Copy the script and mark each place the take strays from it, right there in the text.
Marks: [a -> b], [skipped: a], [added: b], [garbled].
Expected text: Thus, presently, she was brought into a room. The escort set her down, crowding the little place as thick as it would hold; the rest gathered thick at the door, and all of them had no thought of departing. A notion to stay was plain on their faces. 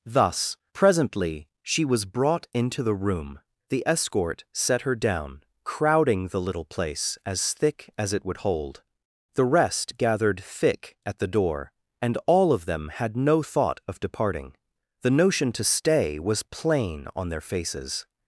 Thus, presently, she was brought into [a -> the] room. The escort set her down, crowding the little place as thick as it would hold; the rest gathered thick at the door, and all of them had no thought of departing. [A -> The] notion to stay was plain on their faces.